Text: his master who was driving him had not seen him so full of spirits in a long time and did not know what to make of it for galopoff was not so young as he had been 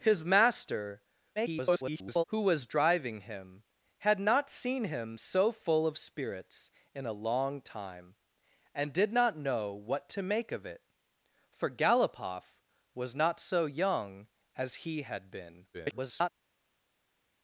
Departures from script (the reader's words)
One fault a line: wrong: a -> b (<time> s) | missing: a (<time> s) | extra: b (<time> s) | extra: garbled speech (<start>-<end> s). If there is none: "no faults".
extra: garbled speech (1.4-2.2 s)
extra: garbled speech (15.7-16.3 s)